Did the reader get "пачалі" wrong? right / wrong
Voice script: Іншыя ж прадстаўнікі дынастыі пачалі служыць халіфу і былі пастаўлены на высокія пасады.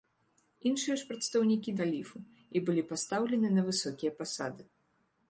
wrong